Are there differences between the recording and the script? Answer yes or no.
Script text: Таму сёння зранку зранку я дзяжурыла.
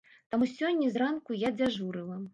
yes